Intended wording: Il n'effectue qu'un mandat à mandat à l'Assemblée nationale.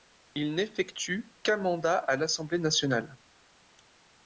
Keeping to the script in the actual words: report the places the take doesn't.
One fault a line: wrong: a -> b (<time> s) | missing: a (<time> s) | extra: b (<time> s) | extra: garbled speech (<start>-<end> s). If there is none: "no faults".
missing: mandat à (2.1 s)